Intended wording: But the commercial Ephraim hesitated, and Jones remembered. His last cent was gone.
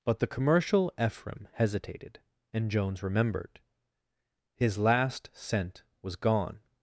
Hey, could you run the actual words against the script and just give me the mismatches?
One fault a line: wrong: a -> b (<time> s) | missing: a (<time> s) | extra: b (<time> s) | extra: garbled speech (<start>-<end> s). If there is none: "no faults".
no faults